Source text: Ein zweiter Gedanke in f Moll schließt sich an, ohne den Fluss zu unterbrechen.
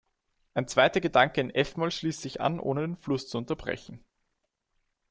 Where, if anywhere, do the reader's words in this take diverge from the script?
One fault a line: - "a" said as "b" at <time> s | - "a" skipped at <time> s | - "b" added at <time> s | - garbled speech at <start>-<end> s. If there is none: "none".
none